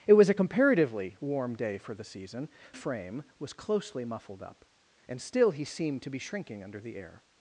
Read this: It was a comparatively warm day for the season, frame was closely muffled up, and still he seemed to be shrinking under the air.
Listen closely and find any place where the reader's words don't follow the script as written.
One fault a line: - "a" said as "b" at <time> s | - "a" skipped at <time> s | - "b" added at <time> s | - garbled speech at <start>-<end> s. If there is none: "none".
none